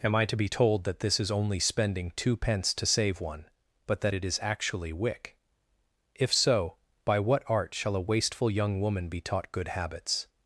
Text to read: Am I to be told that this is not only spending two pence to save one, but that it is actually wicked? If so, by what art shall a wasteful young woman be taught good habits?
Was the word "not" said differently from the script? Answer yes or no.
yes